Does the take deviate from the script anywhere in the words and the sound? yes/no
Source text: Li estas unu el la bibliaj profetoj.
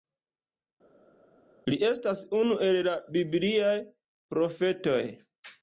no